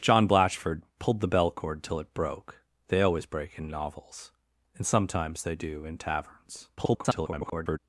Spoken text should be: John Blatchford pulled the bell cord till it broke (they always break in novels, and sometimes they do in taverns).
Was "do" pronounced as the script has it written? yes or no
yes